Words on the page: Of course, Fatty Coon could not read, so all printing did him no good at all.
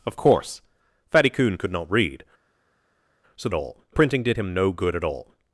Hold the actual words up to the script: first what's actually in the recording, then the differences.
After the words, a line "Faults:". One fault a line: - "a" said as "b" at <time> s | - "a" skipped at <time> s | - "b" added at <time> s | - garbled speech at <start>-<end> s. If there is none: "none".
Of course, Fatty Coon could not read, so all printing did him no good at all.
Faults:
none